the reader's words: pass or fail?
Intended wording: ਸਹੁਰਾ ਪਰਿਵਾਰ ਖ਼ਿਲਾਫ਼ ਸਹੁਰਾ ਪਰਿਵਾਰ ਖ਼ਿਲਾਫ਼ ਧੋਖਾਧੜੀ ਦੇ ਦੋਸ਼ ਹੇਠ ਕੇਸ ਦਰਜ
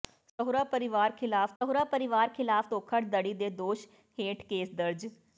pass